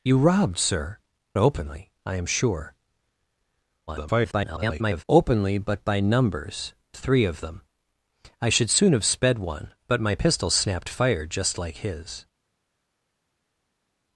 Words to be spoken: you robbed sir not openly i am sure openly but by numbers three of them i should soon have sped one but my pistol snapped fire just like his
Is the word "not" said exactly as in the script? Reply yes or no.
no